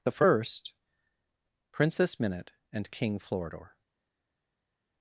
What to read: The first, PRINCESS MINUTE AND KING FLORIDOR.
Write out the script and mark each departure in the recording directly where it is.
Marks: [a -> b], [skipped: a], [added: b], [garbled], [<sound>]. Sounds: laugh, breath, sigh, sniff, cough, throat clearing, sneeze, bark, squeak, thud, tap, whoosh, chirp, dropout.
The first, PRINCESS MINUTE AND KING FLORIDOR.